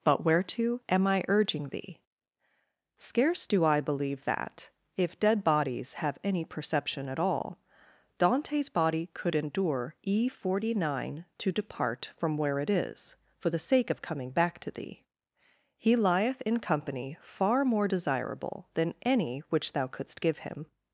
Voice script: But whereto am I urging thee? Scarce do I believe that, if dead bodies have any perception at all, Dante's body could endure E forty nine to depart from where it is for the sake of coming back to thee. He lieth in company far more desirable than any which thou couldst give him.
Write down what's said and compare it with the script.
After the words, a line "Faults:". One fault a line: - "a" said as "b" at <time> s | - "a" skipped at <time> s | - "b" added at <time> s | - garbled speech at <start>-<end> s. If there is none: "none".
But whereto am I urging thee? Scarce do I believe that, if dead bodies have any perception at all, Dante's body could endure E forty nine to depart from where it is for the sake of coming back to thee. He lieth in company far more desirable than any which thou couldst give him.
Faults:
none